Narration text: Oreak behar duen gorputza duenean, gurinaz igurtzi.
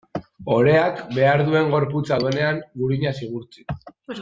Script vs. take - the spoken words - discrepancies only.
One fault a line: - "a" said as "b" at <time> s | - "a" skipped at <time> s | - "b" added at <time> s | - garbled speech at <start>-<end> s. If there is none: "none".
none